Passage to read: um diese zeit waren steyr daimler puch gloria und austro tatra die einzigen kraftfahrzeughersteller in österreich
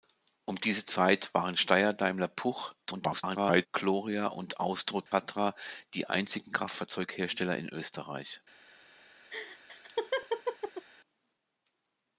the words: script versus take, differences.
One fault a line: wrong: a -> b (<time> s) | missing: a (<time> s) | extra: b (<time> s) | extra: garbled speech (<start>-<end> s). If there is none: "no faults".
extra: garbled speech (2.9-3.7 s)